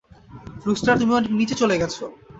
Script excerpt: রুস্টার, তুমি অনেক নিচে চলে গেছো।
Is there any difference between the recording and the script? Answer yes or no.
no